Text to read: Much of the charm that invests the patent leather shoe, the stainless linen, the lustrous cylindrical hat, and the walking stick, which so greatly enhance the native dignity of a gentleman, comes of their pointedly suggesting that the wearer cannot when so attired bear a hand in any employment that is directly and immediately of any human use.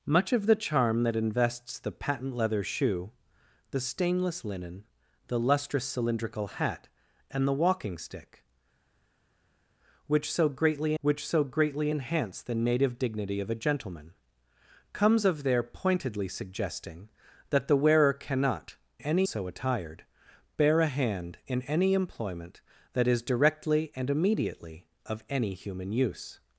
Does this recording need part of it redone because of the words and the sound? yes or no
yes